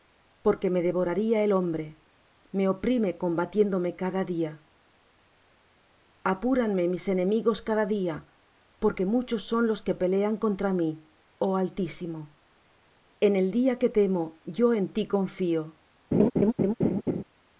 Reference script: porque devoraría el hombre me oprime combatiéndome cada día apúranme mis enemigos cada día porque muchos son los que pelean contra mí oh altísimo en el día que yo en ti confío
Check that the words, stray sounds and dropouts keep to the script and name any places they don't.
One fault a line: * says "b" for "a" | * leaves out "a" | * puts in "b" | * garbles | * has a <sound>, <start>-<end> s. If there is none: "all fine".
* puts in "me"
* puts in "temo"
* has a laugh, 16.1-17.2 s